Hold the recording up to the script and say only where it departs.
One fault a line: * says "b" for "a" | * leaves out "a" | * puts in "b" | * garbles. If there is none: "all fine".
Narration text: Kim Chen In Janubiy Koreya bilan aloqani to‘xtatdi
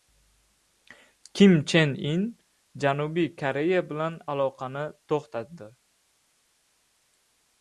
all fine